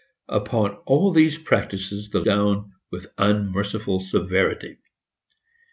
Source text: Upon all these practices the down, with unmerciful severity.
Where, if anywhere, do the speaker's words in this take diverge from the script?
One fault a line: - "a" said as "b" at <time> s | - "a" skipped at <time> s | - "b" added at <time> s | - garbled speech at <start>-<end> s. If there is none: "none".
none